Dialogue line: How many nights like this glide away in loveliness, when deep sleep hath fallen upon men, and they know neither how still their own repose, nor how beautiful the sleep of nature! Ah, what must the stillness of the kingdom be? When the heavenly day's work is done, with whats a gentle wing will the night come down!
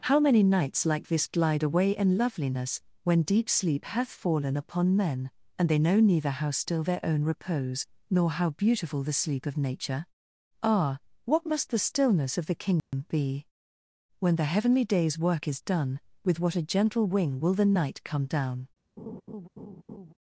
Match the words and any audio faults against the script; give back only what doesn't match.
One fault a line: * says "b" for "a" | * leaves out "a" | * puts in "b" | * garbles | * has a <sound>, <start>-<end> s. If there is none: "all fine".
* has a dropout, 12.8-12.9 s
* says "what" for "whats"
* has a laugh, 19.0-20.1 s